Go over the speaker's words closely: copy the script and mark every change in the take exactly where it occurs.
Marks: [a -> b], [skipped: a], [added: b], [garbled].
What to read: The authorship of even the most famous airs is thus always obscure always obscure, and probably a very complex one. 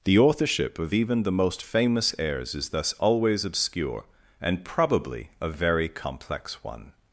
The authorship of even the most famous airs is thus always obscure [skipped: always obscure,] and probably a very complex one.